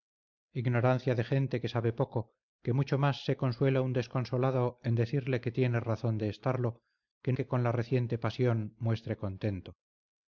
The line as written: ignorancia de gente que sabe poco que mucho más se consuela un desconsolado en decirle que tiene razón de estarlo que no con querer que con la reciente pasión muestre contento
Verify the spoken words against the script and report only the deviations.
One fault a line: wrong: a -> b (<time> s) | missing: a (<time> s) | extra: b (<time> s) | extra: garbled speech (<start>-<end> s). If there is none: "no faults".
missing: no con querer (7.3 s)